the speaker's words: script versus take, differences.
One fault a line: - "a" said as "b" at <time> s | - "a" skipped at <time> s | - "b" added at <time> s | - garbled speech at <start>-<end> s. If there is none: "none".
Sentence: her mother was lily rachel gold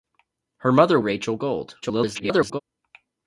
- "was lily" skipped at 1.0 s
- garbled speech at 1.8-2.6 s